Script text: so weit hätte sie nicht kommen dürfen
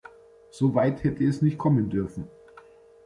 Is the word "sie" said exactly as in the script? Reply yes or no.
no